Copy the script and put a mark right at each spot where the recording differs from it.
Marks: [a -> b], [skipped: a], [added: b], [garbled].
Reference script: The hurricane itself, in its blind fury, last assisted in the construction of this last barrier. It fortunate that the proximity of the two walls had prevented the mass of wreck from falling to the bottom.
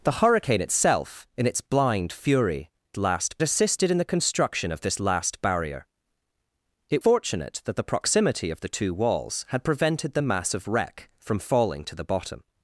The hurricane itself, in its blind fury, last assisted in the construction of this last barrier. It fortunate that the proximity of the two walls had prevented the mass of wreck from falling to the bottom.